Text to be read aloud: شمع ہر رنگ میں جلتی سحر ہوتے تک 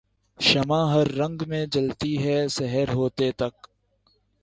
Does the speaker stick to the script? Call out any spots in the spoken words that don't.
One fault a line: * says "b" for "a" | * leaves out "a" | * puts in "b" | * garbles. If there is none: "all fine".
* puts in "ہے"